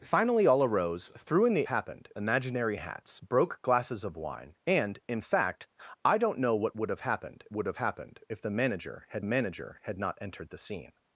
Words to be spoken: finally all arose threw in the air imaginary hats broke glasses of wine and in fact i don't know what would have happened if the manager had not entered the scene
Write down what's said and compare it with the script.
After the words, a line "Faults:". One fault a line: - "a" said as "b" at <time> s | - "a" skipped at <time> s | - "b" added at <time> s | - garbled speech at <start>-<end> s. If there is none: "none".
finally all arose threw in the happened imaginary hats broke glasses of wine and in fact i don't know what would have happened would have happened if the manager had manager had not entered the scene
Faults:
- "air" said as "happened" at 1.7 s
- "would have happened" added at 7.5 s
- "manager had" added at 9.2 s